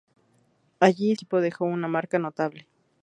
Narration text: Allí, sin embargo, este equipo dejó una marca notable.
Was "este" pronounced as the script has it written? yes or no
no